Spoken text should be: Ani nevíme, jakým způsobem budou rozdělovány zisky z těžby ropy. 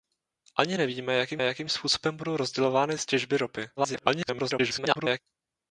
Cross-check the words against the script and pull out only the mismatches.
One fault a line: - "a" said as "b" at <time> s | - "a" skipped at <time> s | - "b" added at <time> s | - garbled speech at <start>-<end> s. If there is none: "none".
- "jakým" added at 1.4 s
- "zisky" skipped at 3.0 s
- garbled speech at 3.8-5.2 s